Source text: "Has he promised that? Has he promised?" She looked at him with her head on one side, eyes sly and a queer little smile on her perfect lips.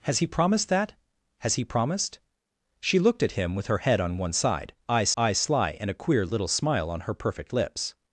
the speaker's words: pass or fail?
fail